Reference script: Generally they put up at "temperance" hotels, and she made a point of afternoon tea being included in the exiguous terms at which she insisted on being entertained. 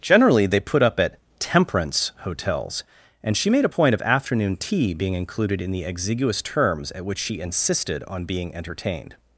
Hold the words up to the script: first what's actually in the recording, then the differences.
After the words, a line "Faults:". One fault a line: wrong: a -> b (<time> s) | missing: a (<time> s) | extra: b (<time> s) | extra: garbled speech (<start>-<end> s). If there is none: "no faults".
Generally they put up at "temperance" hotels, and she made a point of afternoon tea being included in the exiguous terms at which she insisted on being entertained.
Faults:
no faults